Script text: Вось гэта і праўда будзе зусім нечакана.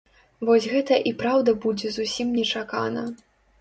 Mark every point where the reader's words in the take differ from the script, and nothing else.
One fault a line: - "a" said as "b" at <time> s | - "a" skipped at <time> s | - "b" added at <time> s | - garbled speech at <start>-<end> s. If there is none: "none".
none